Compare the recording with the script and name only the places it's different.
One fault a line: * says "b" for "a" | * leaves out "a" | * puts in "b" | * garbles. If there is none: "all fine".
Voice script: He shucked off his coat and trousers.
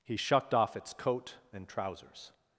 * says "its" for "his"